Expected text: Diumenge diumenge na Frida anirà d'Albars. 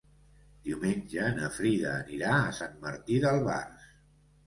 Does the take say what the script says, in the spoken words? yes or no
no